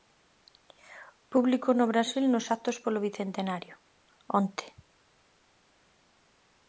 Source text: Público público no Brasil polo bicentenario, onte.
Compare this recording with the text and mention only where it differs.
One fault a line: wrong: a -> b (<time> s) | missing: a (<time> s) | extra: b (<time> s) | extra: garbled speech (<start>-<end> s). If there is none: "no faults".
missing: público (1.7 s)
extra: nos actos (2.3 s)